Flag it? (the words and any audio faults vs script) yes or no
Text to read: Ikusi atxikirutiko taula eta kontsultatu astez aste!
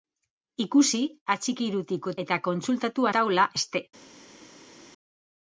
yes